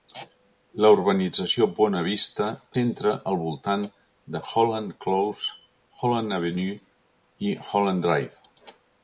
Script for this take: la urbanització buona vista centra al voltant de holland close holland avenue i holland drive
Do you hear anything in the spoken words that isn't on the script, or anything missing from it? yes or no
no